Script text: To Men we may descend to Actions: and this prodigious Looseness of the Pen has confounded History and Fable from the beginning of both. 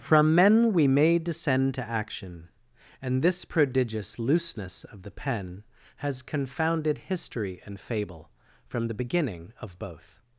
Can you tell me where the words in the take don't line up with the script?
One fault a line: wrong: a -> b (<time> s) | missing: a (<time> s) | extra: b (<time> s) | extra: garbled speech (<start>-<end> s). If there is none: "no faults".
wrong: To -> From (0.0 s)
wrong: Actions -> Action (1.9 s)